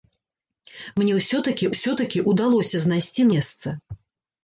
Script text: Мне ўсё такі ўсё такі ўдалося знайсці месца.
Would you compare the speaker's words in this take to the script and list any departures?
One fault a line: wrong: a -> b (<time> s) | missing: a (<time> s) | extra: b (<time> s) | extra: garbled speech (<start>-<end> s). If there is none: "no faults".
no faults